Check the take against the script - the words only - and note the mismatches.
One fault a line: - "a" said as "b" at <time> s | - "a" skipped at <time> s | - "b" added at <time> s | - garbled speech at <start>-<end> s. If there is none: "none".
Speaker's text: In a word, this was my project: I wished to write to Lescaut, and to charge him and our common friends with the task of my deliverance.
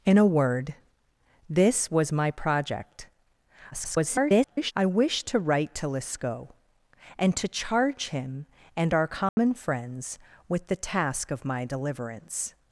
- garbled speech at 3.7-4.7 s